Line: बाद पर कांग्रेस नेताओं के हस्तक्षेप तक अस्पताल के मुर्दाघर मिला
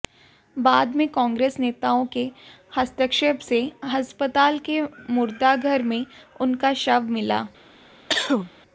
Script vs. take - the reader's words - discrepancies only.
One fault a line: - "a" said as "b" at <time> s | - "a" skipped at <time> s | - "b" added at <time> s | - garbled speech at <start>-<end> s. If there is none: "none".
- "पर" said as "में" at 0.9 s
- "तक" said as "से" at 3.4 s
- "में उनका शव" added at 5.8 s